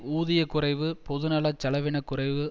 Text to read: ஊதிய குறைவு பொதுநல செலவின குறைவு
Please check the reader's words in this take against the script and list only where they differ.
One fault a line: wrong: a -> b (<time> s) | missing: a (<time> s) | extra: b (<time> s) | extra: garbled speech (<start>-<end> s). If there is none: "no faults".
no faults